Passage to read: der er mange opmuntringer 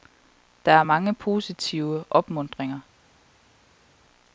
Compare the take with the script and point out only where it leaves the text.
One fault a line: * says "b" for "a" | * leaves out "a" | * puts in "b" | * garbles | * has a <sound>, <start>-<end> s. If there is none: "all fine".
* puts in "positive"